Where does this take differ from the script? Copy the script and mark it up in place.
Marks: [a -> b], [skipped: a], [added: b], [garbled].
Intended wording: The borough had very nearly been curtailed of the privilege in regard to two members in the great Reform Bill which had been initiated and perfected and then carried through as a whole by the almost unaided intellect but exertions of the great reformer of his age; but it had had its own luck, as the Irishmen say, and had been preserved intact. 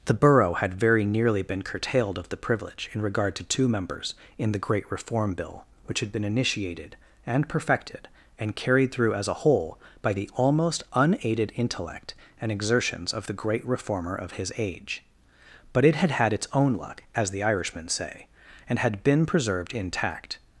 The borough had very nearly been curtailed of the privilege in regard to two members in the great Reform Bill which had been initiated and perfected and [skipped: then] carried through as a whole by the almost unaided intellect [but -> and] exertions of the great reformer of his age; but it had had its own luck, as the Irishmen say, and had been preserved intact.